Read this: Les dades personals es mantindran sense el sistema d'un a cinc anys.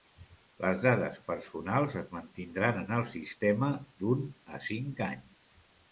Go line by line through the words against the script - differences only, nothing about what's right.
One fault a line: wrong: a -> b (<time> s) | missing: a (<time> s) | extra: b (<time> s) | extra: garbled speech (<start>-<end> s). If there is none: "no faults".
wrong: sense -> en (2.8 s)